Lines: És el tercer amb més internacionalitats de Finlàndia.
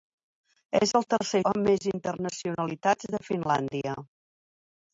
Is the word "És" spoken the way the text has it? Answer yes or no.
yes